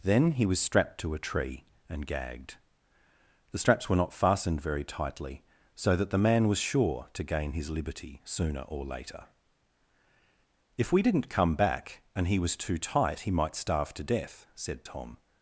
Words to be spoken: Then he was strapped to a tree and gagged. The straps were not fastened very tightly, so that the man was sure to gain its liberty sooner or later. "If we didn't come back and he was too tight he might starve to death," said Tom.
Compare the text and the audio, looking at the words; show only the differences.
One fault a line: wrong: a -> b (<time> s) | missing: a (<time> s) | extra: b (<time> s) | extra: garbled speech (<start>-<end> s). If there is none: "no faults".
wrong: its -> his (7.5 s)